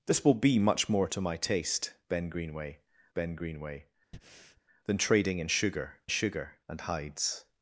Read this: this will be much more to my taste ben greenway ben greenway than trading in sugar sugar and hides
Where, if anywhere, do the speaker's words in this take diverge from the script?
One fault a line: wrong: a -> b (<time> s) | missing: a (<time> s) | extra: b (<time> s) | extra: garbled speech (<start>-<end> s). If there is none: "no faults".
no faults